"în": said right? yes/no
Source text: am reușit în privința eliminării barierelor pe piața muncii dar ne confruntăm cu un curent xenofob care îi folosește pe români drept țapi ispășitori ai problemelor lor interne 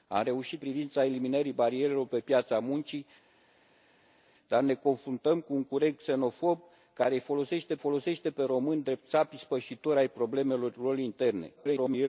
no